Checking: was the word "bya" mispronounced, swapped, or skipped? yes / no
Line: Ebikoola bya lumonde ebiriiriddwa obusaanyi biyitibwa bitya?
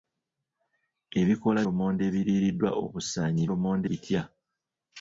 yes